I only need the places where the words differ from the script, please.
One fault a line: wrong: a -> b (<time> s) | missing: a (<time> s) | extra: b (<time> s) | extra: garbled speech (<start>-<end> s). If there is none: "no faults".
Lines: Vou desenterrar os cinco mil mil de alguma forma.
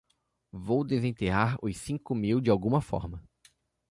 missing: mil (2.4 s)